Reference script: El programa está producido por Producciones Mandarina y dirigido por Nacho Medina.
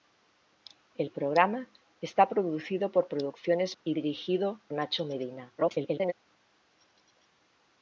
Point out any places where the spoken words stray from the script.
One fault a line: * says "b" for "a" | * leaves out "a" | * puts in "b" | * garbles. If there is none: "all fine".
* leaves out "Mandarina"
* leaves out "por"
* garbles